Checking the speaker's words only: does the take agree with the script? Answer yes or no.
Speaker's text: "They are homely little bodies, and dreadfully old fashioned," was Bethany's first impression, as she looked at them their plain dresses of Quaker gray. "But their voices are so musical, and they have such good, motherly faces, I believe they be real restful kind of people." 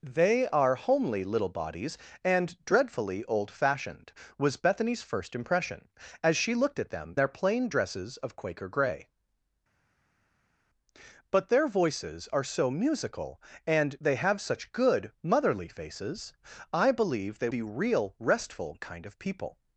yes